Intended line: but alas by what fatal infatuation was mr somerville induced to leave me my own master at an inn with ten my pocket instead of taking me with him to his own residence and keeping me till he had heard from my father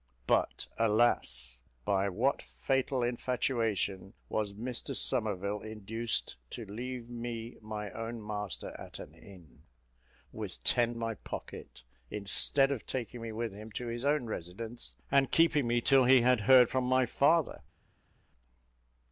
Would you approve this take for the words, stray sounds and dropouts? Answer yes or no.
yes